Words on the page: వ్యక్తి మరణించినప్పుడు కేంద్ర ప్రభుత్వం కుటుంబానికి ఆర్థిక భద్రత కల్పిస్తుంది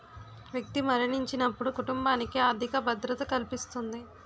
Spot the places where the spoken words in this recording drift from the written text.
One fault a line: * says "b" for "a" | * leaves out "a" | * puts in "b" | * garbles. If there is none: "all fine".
* leaves out "కేంద్ర ప్రభుత్వం"